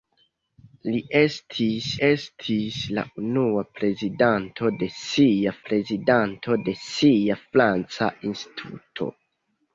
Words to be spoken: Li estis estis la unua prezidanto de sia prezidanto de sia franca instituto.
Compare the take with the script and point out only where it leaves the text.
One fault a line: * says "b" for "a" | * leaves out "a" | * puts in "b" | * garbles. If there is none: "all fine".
all fine